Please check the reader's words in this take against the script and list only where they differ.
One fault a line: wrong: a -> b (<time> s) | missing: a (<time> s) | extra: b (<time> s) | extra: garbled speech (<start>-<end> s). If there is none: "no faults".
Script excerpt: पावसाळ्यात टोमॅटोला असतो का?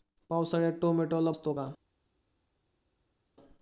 no faults